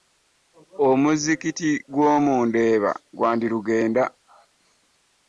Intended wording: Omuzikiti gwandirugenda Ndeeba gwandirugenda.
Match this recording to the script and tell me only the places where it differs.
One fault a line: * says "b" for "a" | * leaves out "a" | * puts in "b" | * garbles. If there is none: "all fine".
* says "gw'omu" for "gwandirugenda"